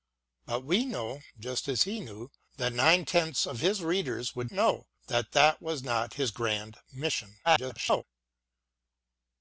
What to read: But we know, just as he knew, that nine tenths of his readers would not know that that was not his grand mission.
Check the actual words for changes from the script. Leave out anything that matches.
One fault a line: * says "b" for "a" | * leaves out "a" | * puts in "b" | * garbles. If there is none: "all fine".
* leaves out "not"
* garbles